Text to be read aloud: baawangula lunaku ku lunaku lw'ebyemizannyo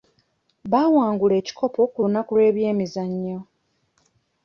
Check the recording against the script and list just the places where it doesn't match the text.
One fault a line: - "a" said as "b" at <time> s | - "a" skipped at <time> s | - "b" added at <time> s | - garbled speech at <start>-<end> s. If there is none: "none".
- "lunaku" said as "ekikopo" at 1.4 s